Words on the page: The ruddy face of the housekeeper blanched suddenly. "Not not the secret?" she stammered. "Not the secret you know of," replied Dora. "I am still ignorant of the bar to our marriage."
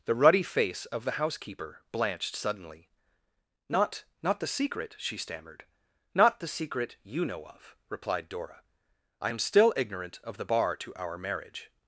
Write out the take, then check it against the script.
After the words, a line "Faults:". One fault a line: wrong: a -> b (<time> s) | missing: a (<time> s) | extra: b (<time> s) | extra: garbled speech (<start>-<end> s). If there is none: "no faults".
The ruddy face of the housekeeper blanched suddenly. "Not not the secret?" she stammered. "Not the secret you know of," replied Dora. "I am still ignorant of the bar to our marriage."
Faults:
no faults